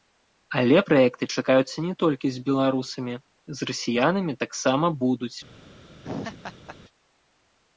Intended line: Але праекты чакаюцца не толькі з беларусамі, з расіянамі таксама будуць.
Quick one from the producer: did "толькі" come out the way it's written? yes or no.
yes